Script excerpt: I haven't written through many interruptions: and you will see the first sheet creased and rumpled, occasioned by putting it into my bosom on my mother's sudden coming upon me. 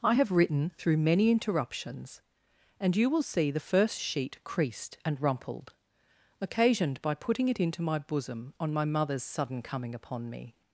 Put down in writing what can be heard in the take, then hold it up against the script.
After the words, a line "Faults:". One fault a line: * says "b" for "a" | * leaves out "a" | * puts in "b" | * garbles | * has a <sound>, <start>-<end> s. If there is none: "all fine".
I have written through many interruptions: and you will see the first sheet creased and rumpled, occasioned by putting it into my bosom on my mother's sudden coming upon me.
Faults:
* says "have" for "haven't"